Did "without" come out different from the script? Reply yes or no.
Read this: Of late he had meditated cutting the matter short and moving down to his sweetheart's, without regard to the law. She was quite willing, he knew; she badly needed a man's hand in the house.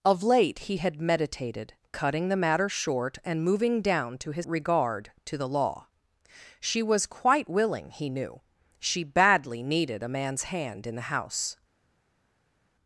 yes